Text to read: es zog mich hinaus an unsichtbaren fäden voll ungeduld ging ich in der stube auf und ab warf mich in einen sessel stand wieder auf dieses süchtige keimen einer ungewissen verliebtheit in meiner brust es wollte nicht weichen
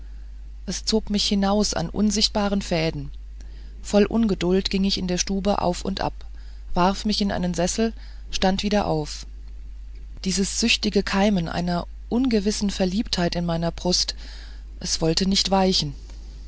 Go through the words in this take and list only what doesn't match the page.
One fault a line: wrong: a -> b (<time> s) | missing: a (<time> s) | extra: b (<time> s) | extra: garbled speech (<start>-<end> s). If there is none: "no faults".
no faults